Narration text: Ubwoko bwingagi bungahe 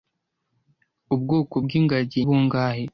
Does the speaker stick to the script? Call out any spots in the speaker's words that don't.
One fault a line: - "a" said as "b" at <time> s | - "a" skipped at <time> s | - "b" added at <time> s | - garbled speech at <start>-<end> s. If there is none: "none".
none